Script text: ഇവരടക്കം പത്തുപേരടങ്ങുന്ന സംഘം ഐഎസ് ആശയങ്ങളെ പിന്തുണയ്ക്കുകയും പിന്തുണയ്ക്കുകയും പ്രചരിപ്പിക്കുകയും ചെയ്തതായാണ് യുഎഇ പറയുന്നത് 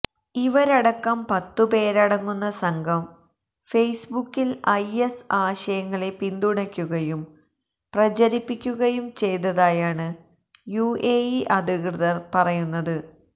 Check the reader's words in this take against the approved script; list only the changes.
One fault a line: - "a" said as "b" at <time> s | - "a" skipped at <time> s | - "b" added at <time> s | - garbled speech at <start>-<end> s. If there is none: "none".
- "ഫെയ്സ്ബുക്കില്" added at 3.7 s
- "പിന്തുണയ്ക്കുകയും" skipped at 7.2 s
- "അധികൃതര്" added at 11.6 s